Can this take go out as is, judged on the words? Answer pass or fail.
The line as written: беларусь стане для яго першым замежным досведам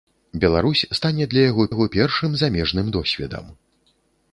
fail